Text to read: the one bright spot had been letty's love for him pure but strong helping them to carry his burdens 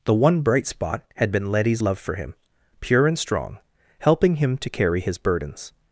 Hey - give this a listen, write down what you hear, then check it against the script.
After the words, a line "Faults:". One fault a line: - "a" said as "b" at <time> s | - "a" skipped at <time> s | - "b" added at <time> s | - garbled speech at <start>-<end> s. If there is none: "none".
the one bright spot had been letty's love for him pure and strong helping him to carry his burdens
Faults:
- "but" said as "and" at 3.1 s
- "them" said as "him" at 4.4 s